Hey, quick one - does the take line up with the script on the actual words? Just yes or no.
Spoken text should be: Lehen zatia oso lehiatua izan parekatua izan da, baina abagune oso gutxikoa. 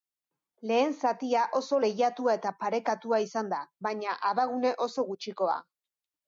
no